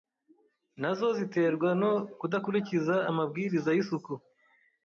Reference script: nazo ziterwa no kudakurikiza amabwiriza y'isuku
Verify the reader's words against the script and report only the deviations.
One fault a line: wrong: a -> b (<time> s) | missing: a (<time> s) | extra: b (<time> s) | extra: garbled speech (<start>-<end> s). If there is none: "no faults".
no faults